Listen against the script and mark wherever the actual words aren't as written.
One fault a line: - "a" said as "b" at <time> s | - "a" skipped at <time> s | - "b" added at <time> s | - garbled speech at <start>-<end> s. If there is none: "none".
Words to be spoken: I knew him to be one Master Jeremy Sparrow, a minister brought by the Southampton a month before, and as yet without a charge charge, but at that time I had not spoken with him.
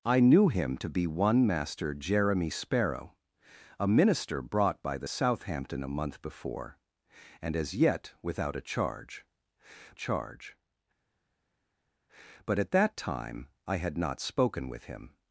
none